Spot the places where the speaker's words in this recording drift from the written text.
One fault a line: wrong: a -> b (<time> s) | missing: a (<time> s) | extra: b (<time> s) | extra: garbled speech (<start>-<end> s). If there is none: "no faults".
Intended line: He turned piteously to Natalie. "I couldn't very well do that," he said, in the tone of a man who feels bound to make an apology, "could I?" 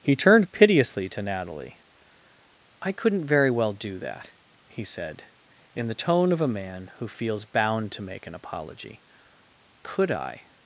no faults